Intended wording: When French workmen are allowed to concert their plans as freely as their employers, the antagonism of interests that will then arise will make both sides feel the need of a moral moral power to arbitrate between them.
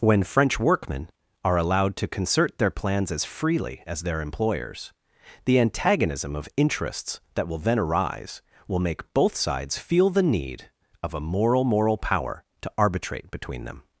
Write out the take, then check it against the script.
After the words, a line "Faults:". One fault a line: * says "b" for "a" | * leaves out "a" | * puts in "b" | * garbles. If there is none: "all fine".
When French workmen are allowed to concert their plans as freely as their employers, the antagonism of interests that will then arise will make both sides feel the need of a moral moral power to arbitrate between them.
Faults:
all fine